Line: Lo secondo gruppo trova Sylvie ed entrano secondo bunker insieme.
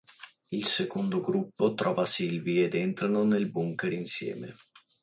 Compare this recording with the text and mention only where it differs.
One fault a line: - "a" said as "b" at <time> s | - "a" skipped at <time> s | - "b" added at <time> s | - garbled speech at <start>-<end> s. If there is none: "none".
- "Lo" said as "Il" at 0.5 s
- "secondo" said as "nel" at 3.2 s